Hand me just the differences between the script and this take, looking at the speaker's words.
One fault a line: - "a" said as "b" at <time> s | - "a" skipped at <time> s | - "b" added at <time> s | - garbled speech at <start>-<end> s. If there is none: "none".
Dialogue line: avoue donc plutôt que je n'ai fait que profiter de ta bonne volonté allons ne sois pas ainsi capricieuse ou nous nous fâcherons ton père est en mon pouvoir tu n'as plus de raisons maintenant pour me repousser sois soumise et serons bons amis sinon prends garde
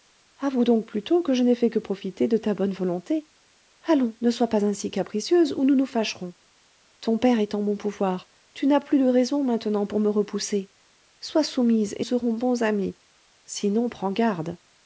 none